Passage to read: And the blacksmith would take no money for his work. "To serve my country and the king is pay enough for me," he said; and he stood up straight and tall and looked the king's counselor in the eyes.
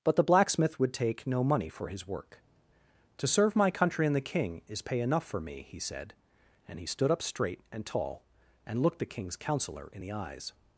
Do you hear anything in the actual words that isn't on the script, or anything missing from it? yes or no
yes